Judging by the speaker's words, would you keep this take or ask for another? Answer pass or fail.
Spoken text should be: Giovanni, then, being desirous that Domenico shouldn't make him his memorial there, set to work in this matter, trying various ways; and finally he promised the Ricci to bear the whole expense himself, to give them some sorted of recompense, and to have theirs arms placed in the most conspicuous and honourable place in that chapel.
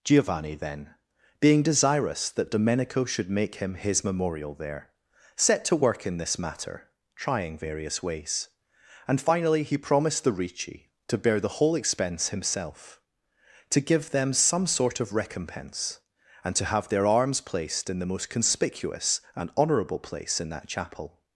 fail